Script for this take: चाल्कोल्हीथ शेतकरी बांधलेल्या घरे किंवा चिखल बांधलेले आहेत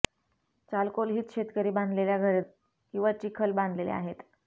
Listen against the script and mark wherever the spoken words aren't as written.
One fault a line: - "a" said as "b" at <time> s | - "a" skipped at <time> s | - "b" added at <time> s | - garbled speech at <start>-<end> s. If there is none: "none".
none